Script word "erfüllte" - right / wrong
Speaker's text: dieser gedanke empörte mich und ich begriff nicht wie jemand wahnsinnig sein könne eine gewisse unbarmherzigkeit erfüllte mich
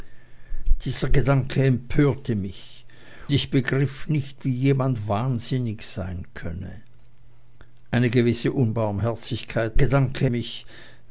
wrong